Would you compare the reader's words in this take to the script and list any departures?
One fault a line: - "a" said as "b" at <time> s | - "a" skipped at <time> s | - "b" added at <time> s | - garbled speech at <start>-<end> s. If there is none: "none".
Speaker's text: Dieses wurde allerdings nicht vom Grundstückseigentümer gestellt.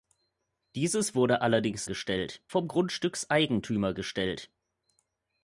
- "nicht" said as "gestellt" at 1.8 s